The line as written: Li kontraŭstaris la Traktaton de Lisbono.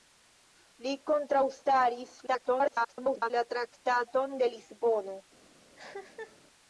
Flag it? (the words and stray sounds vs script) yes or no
yes